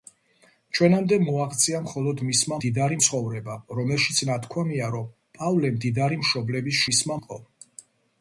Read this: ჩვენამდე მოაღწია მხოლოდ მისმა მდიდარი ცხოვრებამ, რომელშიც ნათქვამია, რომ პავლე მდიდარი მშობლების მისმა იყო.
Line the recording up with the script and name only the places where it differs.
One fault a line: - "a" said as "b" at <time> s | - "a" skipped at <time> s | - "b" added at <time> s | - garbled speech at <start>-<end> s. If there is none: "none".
none